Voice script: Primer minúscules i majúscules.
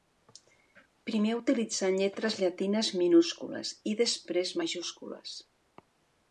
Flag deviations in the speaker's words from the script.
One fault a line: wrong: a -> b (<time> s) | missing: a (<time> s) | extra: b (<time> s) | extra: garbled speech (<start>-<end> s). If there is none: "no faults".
extra: utilitzant lletres llatines (1.4 s)
extra: després (4.0 s)